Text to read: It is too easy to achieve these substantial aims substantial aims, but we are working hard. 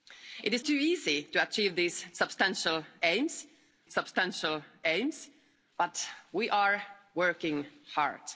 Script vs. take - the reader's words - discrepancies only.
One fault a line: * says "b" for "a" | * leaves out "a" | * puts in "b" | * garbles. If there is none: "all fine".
all fine